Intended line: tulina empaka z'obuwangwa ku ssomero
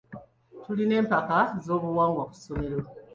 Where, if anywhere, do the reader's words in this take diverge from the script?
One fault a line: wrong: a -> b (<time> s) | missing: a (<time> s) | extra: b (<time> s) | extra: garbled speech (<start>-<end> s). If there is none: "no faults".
no faults